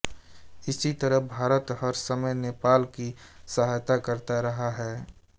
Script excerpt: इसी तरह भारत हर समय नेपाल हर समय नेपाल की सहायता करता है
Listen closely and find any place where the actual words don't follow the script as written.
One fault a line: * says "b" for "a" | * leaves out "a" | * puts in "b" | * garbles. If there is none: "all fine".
* leaves out "हर समय नेपाल"
* puts in "रहा"